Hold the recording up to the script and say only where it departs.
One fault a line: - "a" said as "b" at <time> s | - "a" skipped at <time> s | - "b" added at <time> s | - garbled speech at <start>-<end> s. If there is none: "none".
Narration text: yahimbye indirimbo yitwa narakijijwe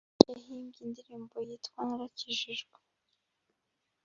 none